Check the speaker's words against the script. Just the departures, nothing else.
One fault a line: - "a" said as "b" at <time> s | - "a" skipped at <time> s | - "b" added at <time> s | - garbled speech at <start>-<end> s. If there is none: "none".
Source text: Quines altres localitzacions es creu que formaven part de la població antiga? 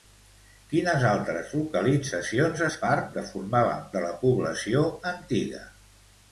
- "creu" said as "part" at 2.9 s
- "part" skipped at 3.9 s